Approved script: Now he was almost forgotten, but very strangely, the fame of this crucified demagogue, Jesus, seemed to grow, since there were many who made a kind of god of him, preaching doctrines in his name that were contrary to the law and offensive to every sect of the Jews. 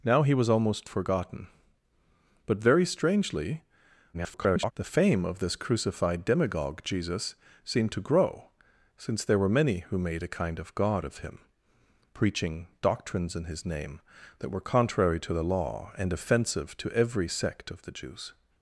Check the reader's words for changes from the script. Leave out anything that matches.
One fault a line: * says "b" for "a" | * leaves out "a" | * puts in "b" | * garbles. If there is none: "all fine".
* garbles